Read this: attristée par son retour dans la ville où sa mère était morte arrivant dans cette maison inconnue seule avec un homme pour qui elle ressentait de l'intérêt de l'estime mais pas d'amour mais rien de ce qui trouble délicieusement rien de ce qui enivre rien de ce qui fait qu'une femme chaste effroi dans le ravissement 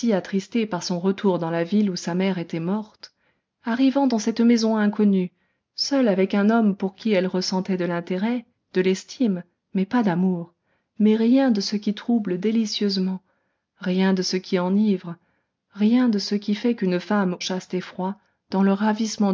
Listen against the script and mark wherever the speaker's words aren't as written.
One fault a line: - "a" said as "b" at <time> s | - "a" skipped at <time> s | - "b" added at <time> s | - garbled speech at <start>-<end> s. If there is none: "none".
none